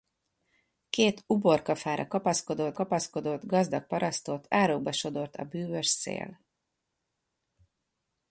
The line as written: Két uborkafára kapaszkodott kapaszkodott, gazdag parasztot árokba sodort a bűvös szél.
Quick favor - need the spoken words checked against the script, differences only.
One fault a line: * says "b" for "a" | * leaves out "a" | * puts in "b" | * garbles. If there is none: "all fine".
all fine